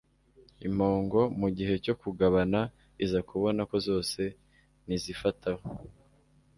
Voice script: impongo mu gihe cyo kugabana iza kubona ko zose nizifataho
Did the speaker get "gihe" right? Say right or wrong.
right